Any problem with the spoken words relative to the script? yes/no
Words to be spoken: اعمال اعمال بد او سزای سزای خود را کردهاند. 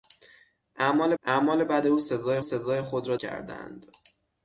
no